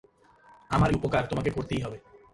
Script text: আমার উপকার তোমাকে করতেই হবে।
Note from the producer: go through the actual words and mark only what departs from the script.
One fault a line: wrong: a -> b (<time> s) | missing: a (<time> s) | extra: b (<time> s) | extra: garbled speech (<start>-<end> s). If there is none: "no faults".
no faults